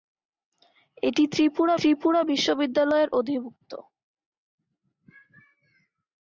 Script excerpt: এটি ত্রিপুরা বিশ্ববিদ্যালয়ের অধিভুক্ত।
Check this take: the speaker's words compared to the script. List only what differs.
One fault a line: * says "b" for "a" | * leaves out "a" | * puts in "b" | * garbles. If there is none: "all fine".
* puts in "ত্রিপুরা"